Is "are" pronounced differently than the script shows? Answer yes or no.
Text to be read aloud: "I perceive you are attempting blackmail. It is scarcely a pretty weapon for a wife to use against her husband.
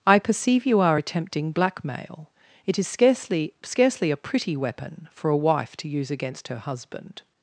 no